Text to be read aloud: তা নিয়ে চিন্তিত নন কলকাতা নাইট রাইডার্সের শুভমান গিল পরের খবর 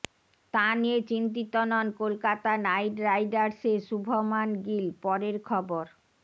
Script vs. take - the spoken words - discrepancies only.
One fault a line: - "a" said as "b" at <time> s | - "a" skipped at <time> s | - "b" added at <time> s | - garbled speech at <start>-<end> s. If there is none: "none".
none